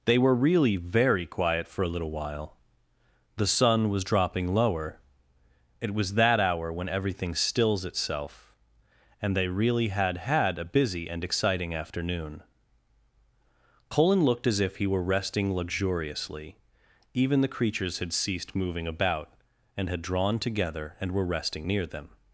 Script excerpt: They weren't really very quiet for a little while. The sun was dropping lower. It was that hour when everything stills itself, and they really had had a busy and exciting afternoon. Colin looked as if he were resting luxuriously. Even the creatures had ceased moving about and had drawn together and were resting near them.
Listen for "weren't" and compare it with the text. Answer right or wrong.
wrong